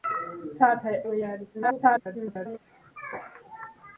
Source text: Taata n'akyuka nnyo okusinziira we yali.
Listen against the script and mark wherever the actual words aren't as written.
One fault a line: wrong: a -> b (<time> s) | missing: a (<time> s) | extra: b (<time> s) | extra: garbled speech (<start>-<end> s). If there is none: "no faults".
missing: n'akyuka nnyo okusinziira (0.9 s)
extra: garbled speech (1.5-2.6 s)